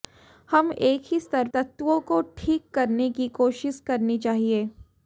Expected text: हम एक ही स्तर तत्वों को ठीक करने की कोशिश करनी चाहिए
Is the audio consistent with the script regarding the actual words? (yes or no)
yes